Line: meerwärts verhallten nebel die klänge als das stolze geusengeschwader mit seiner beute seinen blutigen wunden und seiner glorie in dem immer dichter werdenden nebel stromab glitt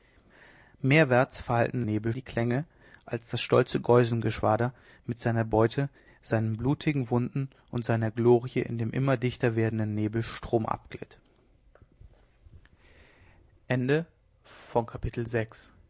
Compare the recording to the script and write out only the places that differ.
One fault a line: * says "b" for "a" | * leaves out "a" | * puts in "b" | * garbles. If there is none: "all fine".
all fine